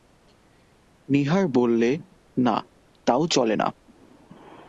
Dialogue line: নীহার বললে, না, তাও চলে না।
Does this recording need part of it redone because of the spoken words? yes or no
no